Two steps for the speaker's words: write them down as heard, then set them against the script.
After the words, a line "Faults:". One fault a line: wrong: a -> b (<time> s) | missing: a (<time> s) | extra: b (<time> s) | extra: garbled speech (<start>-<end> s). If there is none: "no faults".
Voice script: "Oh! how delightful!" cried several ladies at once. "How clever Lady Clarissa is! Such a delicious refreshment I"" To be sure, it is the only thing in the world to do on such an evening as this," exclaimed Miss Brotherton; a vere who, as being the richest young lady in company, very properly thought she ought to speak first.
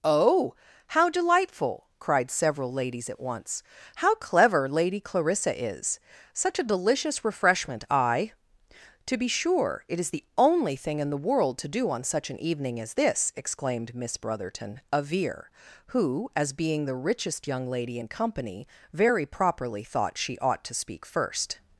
"Oh! how delightful!" cried several ladies at once. "How clever Lady Clarissa is! Such a delicious refreshment I"" To be sure, it is the only thing in the world to do on such an evening as this," exclaimed Miss Brotherton; a vere who, as being the richest young lady in company, very properly thought she ought to speak first.
Faults:
no faults